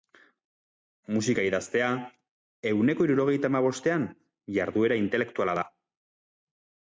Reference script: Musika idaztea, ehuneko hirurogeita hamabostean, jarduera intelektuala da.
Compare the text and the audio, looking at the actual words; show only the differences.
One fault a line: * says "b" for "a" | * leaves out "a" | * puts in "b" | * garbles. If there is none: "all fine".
all fine